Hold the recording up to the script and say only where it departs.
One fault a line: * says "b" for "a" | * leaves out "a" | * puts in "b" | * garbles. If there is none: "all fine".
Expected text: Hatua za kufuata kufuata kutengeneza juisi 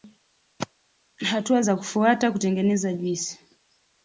* leaves out "kufuata"